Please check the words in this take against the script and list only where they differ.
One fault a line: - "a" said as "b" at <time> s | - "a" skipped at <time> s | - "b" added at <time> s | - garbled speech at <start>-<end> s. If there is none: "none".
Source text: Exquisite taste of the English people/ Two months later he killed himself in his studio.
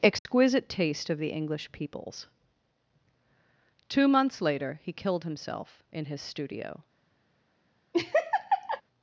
- "people" said as "peoples" at 1.7 s